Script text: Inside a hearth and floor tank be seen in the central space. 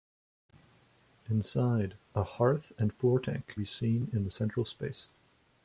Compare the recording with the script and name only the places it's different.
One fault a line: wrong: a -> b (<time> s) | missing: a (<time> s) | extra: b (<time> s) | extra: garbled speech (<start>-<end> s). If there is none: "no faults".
no faults